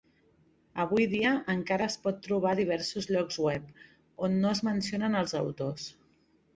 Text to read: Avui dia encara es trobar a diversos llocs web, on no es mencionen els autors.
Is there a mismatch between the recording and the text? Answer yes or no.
yes